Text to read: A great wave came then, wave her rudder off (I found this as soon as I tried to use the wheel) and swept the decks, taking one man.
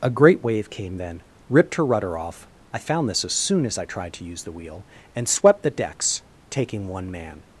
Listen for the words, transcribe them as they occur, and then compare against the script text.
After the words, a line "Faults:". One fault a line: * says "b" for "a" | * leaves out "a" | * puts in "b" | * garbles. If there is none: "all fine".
A great wave came then, ripped her rudder off (I found this as soon as I tried to use the wheel) and swept the decks, taking one man.
Faults:
* says "ripped" for "wave"